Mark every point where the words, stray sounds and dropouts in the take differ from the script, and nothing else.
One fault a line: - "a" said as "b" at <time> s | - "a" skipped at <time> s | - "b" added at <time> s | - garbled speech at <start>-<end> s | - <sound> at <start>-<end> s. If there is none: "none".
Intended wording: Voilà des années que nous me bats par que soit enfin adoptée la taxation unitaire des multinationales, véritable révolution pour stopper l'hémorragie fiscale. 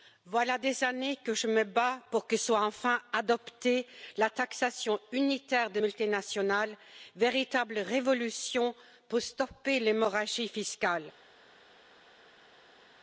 - "nous" said as "je" at 1.3 s
- "par" said as "pour" at 2.1 s